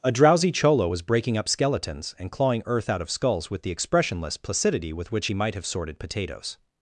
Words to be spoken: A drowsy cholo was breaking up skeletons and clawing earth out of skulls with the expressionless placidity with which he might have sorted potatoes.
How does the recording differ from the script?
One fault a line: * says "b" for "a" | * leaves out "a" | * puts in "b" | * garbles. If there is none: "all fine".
all fine